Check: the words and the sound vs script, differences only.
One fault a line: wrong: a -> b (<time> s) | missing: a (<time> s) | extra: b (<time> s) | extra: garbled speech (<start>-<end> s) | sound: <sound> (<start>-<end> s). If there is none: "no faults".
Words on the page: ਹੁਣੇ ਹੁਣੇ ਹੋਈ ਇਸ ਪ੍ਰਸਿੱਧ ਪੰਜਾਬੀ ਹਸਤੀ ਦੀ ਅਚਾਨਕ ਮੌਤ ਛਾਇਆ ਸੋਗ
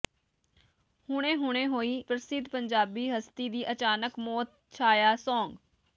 missing: ਇਸ (1.9 s)